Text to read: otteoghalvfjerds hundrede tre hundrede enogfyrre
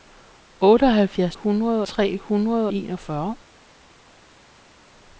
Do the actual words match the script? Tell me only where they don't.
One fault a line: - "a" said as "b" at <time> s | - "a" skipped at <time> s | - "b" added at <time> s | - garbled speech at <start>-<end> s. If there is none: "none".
none